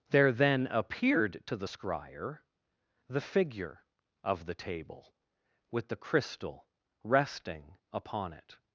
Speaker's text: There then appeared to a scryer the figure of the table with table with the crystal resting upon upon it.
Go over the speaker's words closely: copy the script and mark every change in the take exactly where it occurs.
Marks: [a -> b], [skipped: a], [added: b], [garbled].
There then appeared to [a -> the] scryer the figure of the table with [skipped: table with] the crystal resting upon [skipped: upon] it.